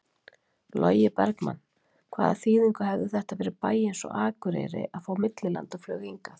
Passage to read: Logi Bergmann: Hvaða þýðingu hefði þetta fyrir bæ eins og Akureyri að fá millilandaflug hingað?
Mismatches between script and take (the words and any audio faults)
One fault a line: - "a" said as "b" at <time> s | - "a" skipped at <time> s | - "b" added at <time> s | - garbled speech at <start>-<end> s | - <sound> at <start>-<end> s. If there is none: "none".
none